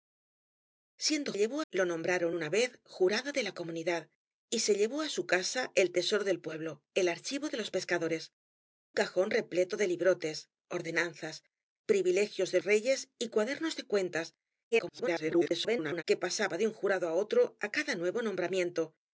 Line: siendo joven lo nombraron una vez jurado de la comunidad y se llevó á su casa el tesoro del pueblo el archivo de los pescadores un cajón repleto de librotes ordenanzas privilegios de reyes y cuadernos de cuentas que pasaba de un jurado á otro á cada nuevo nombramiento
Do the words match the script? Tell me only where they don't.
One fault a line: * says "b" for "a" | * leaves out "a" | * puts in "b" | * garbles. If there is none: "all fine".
* says "llevó" for "joven"
* leaves out "un"
* garbles